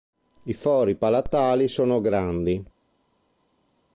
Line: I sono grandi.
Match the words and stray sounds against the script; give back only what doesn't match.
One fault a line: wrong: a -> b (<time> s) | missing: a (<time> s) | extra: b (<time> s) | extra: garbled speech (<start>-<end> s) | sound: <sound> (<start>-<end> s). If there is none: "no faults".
extra: fori palatali (0.5 s)